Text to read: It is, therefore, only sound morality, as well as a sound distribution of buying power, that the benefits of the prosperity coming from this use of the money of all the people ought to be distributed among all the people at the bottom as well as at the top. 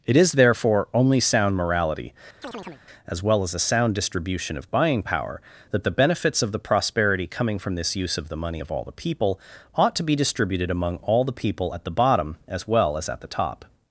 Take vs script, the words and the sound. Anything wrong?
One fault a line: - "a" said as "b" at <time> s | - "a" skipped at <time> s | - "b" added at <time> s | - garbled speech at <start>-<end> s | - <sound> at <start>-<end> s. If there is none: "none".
- chirp at 2.4-2.8 s